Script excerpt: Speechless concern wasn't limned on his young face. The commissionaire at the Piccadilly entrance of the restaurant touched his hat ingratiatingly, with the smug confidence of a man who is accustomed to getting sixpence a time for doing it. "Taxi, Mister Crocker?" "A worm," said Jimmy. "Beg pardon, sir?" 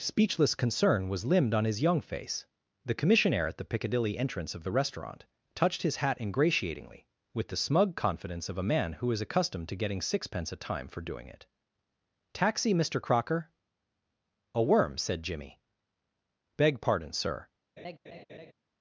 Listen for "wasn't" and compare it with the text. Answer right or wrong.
wrong